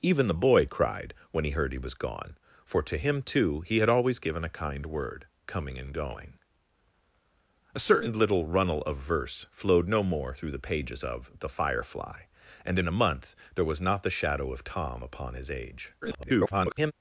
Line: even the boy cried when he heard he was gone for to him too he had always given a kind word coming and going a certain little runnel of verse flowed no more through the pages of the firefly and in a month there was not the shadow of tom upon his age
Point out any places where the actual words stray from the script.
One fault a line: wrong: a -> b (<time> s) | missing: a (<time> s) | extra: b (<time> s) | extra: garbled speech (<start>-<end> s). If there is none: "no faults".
extra: garbled speech (16.0-16.9 s)